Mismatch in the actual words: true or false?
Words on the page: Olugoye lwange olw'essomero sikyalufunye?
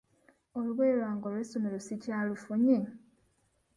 false